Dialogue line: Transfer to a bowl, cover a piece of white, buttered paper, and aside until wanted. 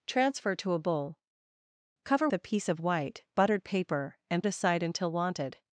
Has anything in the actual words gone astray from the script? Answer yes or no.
no